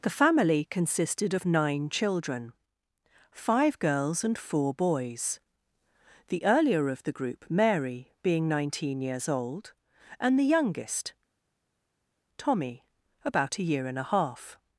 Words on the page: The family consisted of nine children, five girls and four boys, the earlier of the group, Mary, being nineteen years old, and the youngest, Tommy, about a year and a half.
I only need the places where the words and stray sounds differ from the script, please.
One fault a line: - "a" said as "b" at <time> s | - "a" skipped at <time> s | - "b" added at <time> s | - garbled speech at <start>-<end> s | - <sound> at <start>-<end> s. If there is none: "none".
none